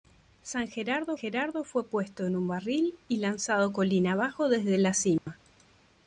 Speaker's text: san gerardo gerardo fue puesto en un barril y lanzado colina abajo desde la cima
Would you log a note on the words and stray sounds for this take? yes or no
yes